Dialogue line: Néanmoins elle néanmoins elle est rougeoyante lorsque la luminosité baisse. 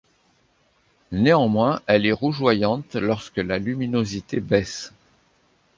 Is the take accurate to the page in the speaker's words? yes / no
no